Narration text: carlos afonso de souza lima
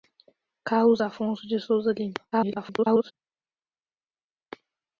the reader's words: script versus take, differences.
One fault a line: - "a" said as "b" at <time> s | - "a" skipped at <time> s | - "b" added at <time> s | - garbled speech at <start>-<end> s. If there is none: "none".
- garbled speech at 2.3-3.1 s